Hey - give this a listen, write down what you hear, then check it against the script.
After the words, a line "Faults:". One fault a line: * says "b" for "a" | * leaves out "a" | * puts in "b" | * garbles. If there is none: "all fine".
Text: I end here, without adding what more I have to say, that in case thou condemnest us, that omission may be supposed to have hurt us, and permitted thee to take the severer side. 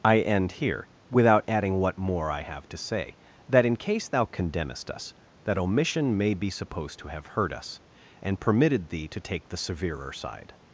I end here, without adding what more I have to say, that in case thou condemnest us, that omission may be supposed to have hurt us, and permitted thee to take the severer side.
Faults:
all fine